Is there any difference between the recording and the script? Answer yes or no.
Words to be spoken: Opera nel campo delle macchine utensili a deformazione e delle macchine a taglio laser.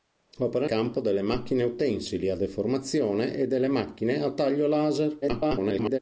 yes